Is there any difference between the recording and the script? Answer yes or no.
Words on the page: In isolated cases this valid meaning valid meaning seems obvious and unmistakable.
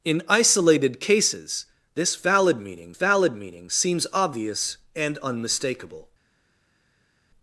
no